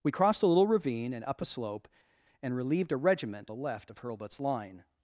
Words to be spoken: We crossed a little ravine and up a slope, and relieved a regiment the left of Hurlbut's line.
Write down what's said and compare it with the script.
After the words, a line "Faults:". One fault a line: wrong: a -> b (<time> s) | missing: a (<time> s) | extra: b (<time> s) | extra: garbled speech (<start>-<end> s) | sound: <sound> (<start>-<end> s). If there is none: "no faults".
We crossed a little ravine and up a slope, and relieved a regiment the left of Hurlbut's line.
Faults:
no faults